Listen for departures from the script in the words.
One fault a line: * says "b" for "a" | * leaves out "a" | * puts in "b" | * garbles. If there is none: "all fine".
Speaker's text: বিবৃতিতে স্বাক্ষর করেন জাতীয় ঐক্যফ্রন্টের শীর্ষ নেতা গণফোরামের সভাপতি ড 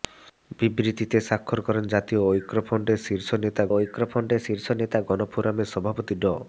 * puts in "ঐক্যফ্রন্টের শীর্ষ নেতা"